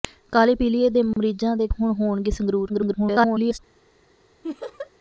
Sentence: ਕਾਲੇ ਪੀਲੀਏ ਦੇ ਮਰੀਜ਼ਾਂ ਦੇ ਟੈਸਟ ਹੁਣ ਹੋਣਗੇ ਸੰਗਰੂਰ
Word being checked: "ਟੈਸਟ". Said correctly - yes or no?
no